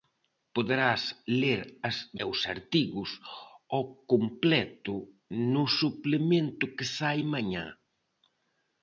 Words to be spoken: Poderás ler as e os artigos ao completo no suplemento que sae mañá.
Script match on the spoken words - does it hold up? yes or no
yes